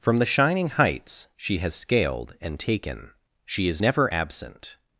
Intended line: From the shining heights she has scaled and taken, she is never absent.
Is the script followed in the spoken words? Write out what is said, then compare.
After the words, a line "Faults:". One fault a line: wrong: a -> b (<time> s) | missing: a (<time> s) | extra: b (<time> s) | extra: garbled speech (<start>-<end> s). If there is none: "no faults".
From the shining heights she has scaled and taken, she is never absent.
Faults:
no faults